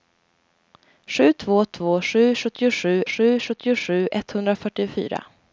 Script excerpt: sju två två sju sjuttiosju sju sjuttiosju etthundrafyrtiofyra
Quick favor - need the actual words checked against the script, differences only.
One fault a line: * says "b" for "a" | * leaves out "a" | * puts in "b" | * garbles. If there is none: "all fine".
all fine